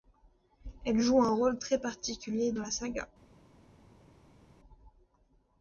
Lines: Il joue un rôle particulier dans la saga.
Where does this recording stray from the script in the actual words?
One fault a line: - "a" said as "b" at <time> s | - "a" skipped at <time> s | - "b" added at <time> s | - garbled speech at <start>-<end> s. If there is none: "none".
- "Il" said as "Elle" at 0.8 s
- "très" added at 1.6 s